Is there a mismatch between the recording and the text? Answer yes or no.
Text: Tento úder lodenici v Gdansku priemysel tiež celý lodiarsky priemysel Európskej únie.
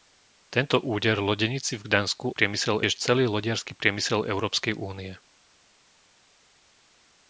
no